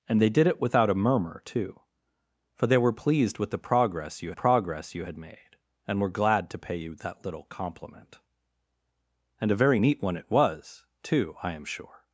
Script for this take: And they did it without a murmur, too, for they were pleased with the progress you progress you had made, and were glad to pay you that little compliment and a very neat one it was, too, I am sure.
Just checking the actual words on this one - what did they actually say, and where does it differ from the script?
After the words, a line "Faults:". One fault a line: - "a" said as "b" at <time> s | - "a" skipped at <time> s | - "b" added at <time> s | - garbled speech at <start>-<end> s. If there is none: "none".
And they did it without a murmur, too, for they were pleased with the progress you progress you had made, and were glad to pay you that little compliment and a very neat one it was, too, I am sure.
Faults:
none